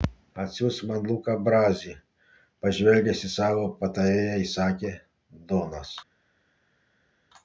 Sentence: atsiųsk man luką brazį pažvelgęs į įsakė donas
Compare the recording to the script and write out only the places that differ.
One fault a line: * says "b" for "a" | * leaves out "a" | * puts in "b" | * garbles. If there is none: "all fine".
* puts in "savo patarėją"